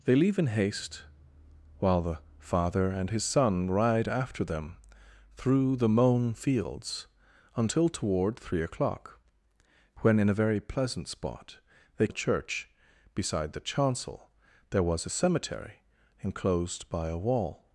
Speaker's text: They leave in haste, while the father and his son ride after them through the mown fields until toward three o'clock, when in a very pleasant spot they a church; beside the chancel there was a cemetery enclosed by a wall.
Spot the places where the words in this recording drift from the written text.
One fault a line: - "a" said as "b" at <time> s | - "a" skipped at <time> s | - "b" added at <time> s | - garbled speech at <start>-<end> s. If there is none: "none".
none